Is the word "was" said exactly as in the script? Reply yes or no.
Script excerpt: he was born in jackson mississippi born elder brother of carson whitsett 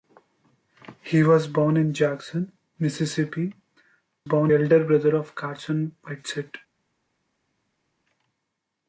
yes